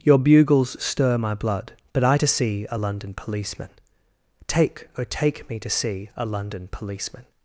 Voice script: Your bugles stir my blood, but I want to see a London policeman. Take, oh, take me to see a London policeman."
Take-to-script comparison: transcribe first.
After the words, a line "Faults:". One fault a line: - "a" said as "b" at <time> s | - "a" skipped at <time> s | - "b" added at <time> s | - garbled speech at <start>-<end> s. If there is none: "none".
Your bugles stir my blood, but I to see a London policeman. Take, oh, take me to see a London policeman."
Faults:
- "want" skipped at 2.2 s